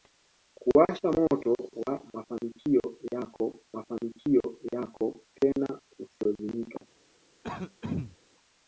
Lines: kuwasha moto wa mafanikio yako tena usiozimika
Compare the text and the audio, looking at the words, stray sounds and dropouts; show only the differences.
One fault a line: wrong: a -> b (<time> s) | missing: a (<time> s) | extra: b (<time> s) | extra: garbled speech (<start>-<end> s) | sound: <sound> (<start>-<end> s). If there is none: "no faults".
extra: mafanikio yako (3.7 s)
sound: throat clearing (7.4-8.2 s)